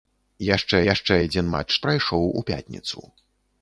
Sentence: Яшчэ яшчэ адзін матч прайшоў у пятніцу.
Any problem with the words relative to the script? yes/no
no